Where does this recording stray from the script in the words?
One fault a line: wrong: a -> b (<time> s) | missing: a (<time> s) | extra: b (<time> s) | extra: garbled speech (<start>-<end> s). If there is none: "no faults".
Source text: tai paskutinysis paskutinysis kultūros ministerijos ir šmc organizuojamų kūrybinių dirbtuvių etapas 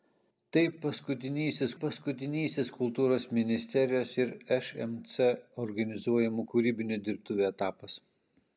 no faults